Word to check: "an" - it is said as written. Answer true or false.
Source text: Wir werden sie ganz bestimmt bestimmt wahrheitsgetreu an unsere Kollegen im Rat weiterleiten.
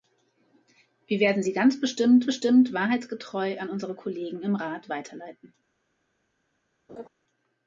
true